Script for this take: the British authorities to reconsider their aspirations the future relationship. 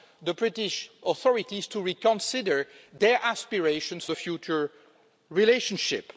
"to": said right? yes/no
yes